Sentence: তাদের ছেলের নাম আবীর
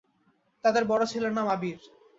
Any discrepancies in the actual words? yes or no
yes